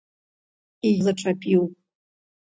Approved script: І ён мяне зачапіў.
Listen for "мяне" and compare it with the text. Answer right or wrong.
wrong